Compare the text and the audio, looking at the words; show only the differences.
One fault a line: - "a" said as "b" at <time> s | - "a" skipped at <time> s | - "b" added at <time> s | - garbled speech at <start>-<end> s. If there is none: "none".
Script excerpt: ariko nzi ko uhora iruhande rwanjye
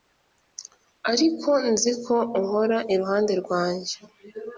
none